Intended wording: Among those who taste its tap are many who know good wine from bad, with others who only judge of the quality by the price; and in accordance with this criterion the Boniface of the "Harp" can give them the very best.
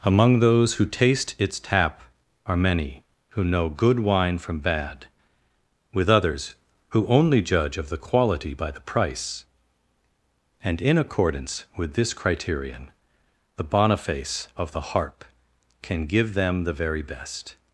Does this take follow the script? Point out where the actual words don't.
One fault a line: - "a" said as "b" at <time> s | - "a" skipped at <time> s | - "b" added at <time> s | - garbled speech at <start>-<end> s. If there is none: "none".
none